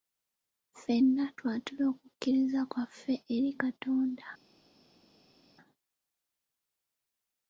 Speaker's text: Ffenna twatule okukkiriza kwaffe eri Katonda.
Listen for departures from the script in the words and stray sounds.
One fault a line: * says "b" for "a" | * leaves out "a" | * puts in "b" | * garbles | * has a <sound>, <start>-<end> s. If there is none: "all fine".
all fine